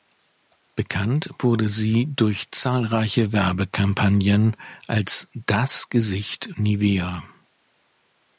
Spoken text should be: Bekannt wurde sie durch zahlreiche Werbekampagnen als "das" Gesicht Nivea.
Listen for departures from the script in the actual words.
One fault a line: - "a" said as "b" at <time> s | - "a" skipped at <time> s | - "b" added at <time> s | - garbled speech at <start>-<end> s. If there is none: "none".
none